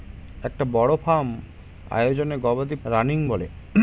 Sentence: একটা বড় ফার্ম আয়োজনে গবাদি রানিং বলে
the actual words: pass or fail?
pass